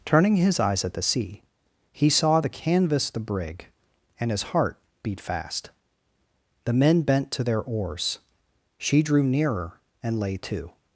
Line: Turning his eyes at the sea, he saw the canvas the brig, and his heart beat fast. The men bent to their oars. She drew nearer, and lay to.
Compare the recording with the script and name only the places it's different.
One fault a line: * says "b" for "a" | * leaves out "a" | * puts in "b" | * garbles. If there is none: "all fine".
all fine